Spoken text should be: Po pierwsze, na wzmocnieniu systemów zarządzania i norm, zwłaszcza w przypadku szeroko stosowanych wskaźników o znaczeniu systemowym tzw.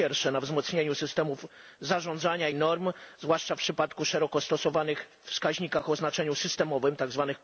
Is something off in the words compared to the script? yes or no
yes